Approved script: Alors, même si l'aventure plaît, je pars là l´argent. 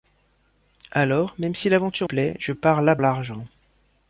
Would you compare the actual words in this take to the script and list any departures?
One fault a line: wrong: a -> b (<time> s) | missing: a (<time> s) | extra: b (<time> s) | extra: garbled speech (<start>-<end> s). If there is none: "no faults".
no faults